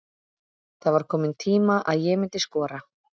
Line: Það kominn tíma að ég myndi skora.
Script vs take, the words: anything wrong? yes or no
yes